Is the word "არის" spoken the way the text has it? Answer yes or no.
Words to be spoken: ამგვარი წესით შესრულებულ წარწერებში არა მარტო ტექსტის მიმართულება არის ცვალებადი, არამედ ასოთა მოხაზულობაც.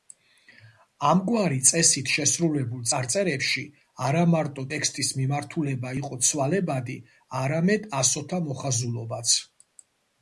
no